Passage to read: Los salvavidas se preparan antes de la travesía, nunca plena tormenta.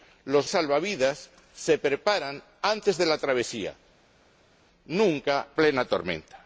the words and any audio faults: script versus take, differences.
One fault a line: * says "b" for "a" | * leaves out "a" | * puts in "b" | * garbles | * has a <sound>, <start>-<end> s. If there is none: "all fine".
all fine